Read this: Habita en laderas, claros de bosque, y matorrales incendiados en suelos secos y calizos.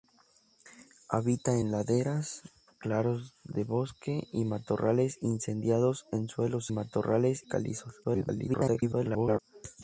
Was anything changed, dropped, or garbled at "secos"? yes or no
yes